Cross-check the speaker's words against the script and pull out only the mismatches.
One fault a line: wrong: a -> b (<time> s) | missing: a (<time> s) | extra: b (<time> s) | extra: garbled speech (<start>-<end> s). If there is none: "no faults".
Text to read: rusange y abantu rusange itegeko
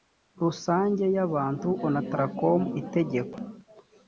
wrong: rusange -> onatracom (1.9 s)